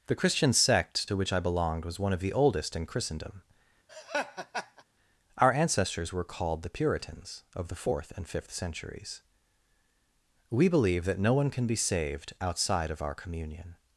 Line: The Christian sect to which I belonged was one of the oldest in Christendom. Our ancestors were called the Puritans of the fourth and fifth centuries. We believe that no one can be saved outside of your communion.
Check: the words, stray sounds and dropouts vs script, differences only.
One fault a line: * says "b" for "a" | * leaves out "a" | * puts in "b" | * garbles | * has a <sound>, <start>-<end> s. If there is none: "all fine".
* has a laugh, 3.9-4.8 s
* says "our" for "your"